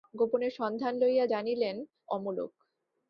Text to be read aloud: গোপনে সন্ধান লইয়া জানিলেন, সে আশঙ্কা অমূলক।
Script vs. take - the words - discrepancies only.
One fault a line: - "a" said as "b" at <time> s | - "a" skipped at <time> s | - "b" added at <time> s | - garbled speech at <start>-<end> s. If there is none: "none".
- "সে আশঙ্কা" skipped at 1.8 s